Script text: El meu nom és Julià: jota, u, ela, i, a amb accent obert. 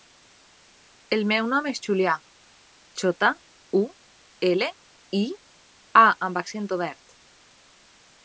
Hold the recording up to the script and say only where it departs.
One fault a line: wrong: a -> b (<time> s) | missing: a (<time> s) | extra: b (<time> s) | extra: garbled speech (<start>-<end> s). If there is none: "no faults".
no faults